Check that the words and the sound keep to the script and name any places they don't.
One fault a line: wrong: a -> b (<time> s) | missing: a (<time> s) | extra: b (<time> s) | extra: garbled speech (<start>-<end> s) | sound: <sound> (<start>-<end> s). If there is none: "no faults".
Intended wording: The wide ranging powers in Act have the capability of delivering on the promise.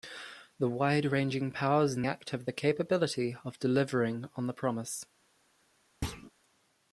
sound: thud (6.0-6.3 s)